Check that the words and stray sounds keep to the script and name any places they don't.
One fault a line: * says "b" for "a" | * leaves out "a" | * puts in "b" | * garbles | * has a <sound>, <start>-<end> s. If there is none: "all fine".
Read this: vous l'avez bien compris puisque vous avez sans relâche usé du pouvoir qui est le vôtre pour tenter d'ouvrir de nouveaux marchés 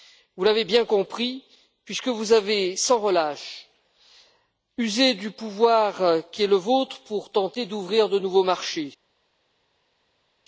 all fine